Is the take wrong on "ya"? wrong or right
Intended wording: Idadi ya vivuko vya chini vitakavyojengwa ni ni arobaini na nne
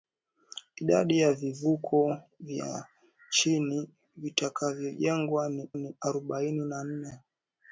right